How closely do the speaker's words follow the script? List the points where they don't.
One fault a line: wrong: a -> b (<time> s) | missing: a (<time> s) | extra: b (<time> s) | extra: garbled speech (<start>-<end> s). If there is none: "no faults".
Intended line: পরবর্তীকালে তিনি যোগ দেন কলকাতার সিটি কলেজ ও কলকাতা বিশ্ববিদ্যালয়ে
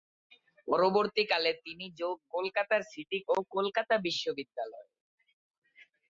missing: দেন (2.2 s)
missing: কলেজ (3.2 s)